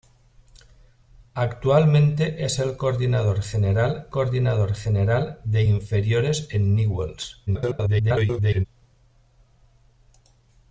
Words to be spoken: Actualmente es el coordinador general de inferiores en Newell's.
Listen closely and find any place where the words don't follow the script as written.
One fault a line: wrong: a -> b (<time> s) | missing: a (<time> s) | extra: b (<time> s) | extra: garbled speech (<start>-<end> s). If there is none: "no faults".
extra: coordinador general (4.1 s)
extra: garbled speech (7.5-8.7 s)